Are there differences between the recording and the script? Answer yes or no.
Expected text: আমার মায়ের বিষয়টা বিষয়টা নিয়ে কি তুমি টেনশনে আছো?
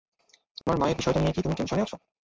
yes